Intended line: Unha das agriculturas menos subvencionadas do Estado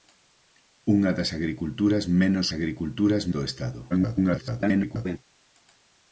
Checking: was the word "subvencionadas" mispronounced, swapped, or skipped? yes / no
yes